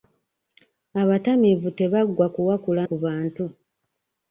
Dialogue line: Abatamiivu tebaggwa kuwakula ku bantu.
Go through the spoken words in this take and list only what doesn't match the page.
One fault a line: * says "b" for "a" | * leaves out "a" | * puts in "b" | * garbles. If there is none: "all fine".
all fine